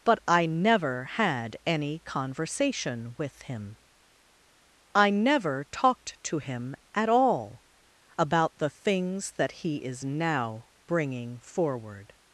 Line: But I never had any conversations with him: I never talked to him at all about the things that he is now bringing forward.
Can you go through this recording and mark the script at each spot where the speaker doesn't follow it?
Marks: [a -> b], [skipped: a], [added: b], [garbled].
But I never had any [conversations -> conversation] with him: I never talked to him at all about the things that he is now bringing forward.